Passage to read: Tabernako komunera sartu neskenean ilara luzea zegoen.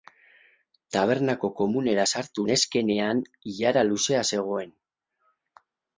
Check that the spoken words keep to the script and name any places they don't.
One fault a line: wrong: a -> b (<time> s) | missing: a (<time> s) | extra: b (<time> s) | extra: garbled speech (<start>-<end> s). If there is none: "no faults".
no faults